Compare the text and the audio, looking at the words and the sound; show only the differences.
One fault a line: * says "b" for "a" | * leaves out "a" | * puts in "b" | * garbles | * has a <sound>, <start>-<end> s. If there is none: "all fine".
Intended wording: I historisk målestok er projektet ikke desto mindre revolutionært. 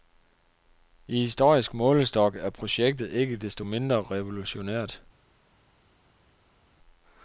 all fine